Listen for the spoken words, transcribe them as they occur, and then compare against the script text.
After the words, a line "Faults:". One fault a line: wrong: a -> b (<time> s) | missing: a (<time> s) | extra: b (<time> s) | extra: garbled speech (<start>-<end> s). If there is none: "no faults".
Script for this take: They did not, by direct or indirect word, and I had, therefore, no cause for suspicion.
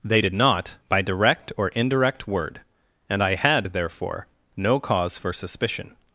They did not, by direct or indirect word, and I had, therefore, no cause for suspicion.
Faults:
no faults